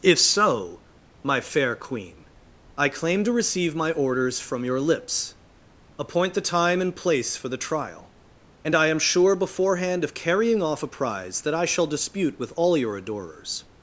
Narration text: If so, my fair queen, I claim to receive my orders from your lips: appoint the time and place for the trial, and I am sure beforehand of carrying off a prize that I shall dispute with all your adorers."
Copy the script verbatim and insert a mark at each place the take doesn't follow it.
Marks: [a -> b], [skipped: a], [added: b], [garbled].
If so, my fair queen, I claim to receive my orders from your lips: appoint the time and place for the trial, and I am sure beforehand of carrying off a prize that I shall dispute with all your adorers."